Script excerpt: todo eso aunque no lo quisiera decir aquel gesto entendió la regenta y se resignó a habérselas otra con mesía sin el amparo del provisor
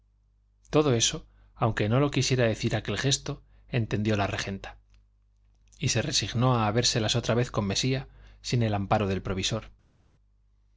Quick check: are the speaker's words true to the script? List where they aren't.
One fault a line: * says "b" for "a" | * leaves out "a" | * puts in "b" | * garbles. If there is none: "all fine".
* puts in "vez"